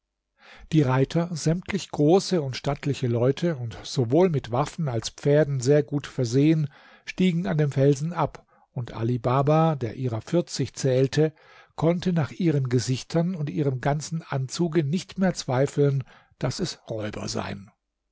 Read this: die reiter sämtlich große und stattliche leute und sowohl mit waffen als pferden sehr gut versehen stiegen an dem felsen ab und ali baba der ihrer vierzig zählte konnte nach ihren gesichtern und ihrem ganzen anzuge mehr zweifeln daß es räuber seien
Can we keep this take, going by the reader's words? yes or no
no